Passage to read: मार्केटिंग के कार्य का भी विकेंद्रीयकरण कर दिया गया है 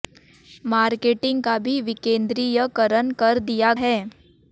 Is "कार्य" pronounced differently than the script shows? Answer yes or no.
yes